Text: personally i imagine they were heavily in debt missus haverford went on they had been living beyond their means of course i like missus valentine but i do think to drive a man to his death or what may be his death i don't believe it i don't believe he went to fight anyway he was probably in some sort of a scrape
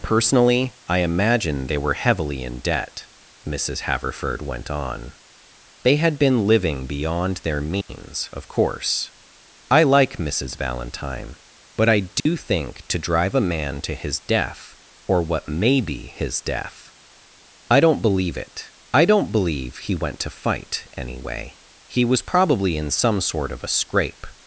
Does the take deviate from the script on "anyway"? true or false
false